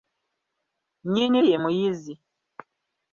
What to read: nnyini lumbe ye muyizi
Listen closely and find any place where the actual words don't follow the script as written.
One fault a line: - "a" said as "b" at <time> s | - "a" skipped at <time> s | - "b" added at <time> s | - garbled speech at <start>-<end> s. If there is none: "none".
- "lumbe" skipped at 1.4 s